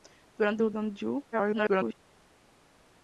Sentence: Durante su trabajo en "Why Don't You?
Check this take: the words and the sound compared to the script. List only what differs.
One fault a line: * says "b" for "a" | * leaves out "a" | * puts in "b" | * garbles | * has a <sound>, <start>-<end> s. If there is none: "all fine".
* leaves out "trabajo en Why"
* garbles